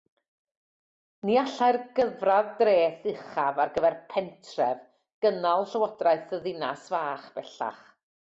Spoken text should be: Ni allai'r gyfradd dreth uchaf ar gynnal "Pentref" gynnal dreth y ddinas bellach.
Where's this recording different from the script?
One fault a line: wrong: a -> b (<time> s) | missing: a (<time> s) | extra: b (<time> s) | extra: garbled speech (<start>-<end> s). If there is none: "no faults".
wrong: gynnal -> gyfer (3.8 s)
wrong: dreth -> llywodraeth (5.7 s)
extra: fach (7.0 s)